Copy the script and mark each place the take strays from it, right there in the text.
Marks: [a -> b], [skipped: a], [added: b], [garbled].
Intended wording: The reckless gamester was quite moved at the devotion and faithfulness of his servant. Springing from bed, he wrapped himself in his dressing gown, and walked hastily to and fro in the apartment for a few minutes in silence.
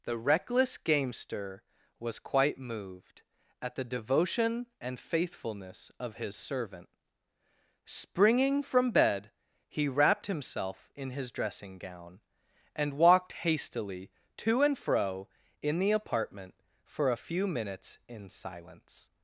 The reckless gamester was quite moved at the devotion and faithfulness of his servant. Springing from bed, he wrapped himself in his dressing gown, and walked hastily to and fro in the apartment for a few minutes in silence.